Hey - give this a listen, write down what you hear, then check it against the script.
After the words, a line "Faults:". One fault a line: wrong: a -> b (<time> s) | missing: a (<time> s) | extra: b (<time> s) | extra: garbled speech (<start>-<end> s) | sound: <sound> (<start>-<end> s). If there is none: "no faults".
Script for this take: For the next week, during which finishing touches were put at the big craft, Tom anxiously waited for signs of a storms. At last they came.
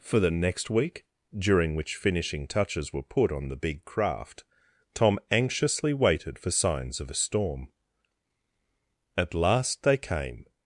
For the next week, during which finishing touches were put on the big craft, Tom anxiously waited for signs of a storm. At last they came.
Faults:
wrong: at -> on (3.3 s)
wrong: storms -> storm (7.2 s)